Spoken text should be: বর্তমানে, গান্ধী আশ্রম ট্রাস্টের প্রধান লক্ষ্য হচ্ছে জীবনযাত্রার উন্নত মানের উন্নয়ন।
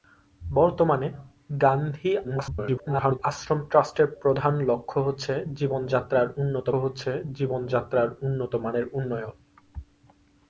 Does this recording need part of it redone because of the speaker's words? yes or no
yes